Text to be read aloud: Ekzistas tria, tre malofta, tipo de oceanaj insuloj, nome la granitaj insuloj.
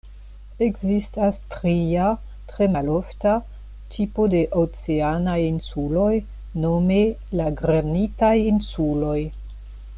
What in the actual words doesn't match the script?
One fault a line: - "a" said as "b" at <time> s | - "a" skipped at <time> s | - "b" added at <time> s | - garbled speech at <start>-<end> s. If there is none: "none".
none